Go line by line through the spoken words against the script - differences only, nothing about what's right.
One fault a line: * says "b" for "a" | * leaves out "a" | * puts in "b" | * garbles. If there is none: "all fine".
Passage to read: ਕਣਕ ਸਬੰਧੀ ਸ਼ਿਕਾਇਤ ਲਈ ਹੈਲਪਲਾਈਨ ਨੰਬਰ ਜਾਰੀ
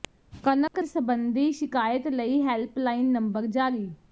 all fine